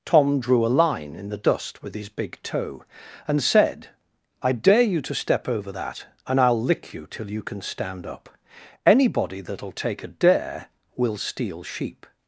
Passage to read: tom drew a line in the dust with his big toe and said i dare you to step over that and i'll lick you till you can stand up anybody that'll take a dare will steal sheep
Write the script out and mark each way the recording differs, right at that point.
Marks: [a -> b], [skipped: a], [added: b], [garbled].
tom drew a line in the dust with his big toe and said i dare you to step over that and i'll lick you till you can stand up anybody that'll take a dare will steal sheep